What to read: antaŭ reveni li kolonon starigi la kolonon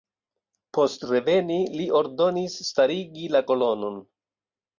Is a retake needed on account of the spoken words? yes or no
yes